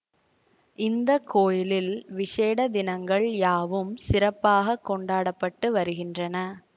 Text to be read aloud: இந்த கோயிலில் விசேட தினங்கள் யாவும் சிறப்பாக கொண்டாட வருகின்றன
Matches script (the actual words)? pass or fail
fail